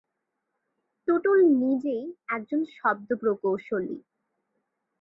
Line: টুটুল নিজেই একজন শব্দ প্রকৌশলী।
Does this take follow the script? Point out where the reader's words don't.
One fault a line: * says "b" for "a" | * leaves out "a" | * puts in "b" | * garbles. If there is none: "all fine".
all fine